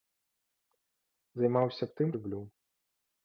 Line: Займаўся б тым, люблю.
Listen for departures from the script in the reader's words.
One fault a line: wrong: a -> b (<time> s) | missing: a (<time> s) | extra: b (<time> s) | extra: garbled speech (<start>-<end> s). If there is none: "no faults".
no faults